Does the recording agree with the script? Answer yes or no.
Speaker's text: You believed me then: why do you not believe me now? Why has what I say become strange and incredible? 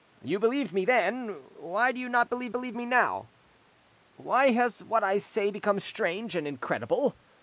no